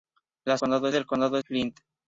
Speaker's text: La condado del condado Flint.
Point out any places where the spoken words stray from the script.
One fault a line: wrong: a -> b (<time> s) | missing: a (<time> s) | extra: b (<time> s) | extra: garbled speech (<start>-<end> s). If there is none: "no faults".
no faults